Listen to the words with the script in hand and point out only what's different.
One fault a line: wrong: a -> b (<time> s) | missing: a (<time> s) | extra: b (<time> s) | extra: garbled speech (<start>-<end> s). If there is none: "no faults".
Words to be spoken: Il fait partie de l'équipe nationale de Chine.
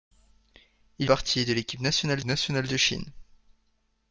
missing: fait (1.1 s)
extra: nationale (2.2 s)